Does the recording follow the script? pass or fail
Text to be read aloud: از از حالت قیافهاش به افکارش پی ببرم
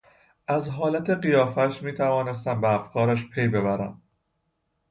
fail